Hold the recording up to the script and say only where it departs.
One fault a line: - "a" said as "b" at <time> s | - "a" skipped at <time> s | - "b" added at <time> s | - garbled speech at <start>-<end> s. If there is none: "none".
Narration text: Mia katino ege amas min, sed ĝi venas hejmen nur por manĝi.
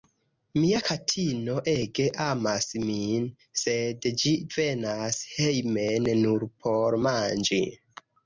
none